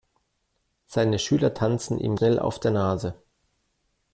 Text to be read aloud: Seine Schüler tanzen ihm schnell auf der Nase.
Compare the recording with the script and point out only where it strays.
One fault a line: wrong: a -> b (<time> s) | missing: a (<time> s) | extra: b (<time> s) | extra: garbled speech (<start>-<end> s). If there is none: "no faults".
no faults